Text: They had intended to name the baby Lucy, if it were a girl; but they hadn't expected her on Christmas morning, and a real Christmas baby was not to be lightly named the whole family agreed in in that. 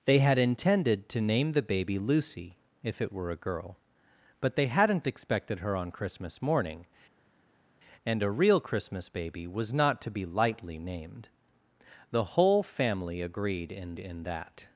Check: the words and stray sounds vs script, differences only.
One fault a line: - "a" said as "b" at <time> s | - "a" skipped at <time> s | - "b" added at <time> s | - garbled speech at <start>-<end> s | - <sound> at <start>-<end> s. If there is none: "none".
none